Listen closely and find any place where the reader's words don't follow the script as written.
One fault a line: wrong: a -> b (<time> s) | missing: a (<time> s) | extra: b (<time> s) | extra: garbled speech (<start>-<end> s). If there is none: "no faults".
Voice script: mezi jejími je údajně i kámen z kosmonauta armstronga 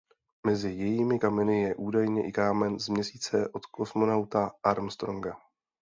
extra: kameny (1.2 s)
extra: měsíce od (2.9 s)